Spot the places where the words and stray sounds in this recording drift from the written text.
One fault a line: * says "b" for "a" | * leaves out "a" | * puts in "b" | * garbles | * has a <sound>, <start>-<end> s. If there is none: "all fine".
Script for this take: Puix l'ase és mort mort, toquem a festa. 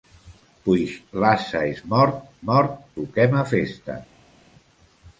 all fine